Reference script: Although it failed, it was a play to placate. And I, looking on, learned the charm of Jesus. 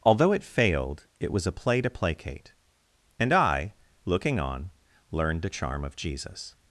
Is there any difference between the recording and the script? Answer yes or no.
no